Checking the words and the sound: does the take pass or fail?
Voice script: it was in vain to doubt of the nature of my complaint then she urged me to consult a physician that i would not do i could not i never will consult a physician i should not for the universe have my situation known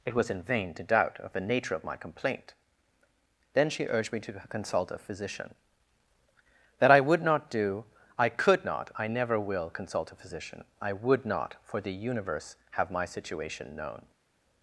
fail